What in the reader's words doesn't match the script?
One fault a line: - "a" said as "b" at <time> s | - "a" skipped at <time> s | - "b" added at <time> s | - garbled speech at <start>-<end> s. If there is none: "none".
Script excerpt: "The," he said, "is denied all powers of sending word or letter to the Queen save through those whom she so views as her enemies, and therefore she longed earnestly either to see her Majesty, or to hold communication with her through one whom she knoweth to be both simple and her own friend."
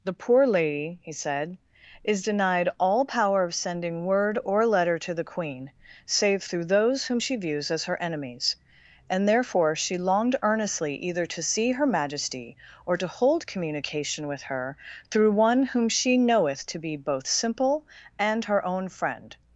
- "poor lady" added at 0.1 s
- "powers" said as "power" at 3.0 s
- "so" skipped at 7.4 s